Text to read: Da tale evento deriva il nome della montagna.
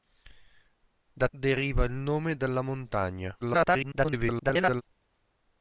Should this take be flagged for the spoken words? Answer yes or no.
yes